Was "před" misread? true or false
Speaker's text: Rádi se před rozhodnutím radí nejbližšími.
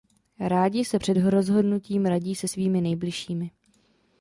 false